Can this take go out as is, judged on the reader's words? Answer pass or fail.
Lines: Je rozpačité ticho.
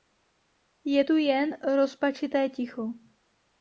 fail